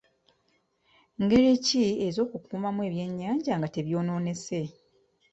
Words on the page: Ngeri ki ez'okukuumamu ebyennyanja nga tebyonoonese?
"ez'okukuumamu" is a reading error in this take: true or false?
false